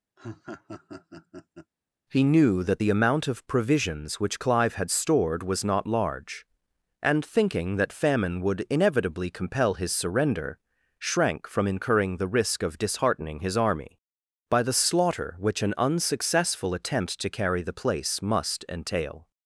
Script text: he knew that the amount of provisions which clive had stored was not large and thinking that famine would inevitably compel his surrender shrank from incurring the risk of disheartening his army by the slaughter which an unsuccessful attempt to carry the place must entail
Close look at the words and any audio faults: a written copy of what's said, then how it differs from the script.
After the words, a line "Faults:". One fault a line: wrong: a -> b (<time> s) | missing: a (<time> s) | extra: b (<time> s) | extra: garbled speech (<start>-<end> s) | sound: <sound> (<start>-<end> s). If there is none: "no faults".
he knew that the amount of provisions which clive had stored was not large and thinking that famine would inevitably compel his surrender shrank from incurring the risk of disheartening his army by the slaughter which an unsuccessful attempt to carry the place must entail
Faults:
sound: laugh (0.2-1.7 s)